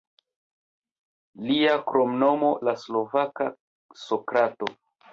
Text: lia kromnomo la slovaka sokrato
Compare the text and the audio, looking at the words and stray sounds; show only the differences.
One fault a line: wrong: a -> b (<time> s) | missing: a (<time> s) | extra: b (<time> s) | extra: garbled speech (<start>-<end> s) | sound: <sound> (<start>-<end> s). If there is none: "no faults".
no faults